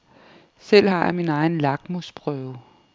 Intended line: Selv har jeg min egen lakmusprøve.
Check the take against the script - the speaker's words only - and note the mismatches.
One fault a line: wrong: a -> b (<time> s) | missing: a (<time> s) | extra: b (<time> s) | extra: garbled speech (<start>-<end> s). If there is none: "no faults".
no faults